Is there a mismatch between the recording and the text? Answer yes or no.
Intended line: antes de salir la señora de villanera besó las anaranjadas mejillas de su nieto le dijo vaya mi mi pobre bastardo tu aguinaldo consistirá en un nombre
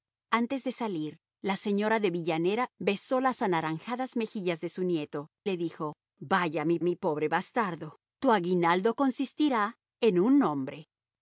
no